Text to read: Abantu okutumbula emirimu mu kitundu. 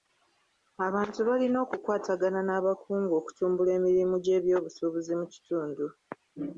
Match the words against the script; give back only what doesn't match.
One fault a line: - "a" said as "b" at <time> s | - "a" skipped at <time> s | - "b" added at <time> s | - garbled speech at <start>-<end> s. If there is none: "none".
- "balina okukwatagana n'abakungu" added at 1.3 s
- "gy'ebyobusuubuzi" added at 4.2 s